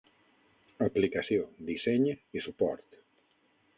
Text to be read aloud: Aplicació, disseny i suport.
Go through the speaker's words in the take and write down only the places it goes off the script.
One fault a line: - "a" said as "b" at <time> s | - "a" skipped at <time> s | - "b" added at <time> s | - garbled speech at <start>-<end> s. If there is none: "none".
none